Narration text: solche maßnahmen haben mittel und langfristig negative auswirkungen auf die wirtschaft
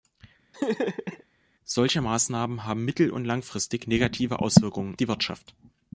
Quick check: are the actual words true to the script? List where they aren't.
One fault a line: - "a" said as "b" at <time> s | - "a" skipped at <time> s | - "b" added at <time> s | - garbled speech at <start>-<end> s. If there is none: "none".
- "auf" skipped at 5.0 s